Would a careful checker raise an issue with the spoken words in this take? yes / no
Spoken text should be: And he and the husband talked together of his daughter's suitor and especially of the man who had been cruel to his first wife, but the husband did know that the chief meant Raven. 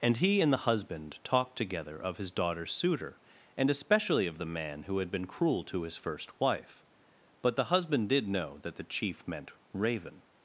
no